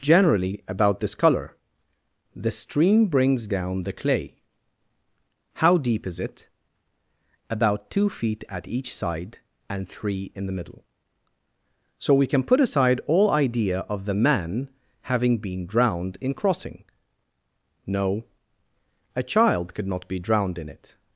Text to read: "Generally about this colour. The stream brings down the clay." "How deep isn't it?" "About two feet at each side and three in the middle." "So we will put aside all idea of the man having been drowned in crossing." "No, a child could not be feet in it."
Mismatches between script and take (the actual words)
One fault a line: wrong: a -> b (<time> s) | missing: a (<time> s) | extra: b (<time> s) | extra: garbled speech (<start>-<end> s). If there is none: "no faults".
wrong: isn't -> is (6.1 s)
wrong: will -> can (12.2 s)
wrong: feet -> drowned (20.2 s)